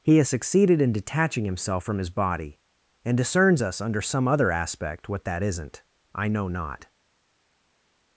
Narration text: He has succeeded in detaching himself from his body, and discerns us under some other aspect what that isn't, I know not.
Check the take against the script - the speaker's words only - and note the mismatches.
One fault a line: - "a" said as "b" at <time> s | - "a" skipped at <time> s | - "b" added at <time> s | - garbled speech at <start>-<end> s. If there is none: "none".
none